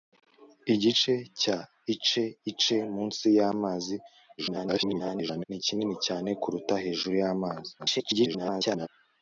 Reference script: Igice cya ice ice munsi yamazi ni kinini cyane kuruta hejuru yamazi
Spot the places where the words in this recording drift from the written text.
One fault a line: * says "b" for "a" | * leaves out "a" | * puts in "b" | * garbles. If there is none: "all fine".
* garbles
* garbles